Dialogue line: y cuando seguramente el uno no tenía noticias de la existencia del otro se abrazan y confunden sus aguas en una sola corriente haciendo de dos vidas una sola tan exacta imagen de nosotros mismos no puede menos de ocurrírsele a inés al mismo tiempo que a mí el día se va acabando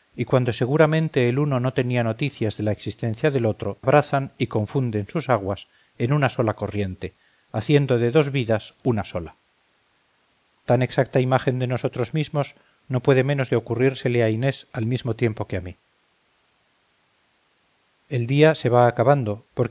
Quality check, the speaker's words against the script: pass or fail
fail